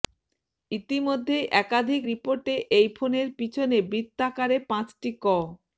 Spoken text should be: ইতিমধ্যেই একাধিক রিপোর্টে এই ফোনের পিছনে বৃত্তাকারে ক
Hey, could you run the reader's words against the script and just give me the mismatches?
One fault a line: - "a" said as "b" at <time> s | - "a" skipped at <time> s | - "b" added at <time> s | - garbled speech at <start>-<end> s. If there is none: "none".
- "পাঁচটি" added at 4.7 s